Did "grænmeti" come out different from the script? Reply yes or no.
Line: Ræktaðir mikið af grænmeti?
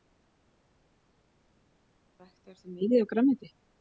no